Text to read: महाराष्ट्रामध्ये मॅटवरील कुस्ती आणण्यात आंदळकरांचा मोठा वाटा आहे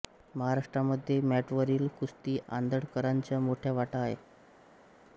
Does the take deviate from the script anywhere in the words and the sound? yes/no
yes